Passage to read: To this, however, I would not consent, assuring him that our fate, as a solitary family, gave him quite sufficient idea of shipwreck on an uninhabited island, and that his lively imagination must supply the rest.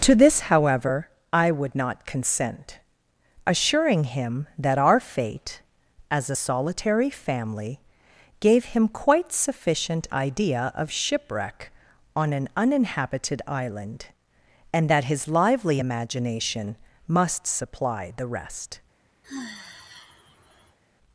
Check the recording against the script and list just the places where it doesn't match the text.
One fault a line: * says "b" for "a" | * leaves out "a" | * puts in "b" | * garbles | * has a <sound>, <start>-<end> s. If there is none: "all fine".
* has a sigh, 19.2-20.8 s